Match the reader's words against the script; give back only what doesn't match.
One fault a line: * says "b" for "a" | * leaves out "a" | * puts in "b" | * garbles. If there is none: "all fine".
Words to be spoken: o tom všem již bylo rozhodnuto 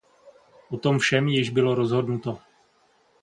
all fine